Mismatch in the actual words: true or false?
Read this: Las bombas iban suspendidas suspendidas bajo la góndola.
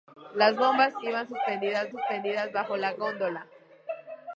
false